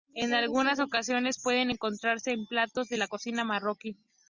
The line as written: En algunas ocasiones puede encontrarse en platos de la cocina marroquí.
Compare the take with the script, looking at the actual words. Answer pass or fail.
pass